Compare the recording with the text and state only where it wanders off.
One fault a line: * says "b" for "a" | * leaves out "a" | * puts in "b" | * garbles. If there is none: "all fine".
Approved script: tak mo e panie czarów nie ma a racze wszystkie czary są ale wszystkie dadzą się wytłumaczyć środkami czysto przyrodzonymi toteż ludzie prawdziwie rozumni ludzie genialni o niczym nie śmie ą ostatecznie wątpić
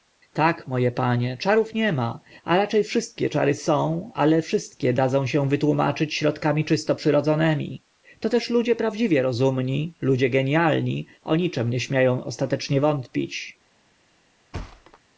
all fine